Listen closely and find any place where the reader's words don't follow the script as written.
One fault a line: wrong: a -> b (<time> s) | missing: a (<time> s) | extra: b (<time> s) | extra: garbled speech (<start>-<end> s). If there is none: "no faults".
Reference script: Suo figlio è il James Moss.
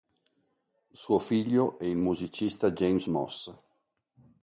extra: musicista (2.0 s)